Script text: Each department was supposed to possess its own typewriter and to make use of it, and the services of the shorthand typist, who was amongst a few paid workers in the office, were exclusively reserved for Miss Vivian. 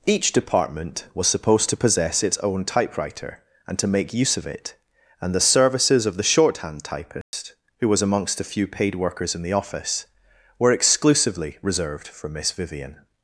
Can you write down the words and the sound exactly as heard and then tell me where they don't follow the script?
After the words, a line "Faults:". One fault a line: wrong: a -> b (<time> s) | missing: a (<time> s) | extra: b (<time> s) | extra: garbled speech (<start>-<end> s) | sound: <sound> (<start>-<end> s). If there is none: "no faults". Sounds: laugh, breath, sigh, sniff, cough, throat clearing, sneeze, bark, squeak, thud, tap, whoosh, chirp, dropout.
Each department was supposed to possess its own typewriter and to make use of it, and the services of the shorthand typist, who was amongst a few paid workers in the office, were exclusively reserved for Miss Vivian.
Faults:
sound: dropout (7.2-7.3 s)